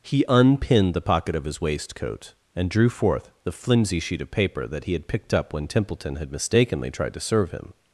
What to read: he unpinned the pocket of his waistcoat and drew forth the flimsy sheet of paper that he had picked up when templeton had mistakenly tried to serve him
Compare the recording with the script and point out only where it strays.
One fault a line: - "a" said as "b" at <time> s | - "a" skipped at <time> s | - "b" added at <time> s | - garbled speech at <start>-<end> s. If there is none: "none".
none